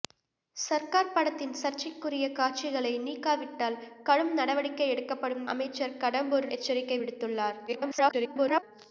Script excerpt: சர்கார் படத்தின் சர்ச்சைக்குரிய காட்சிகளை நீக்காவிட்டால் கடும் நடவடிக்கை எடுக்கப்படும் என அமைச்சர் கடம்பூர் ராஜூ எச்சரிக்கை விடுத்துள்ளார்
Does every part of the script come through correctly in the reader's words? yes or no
no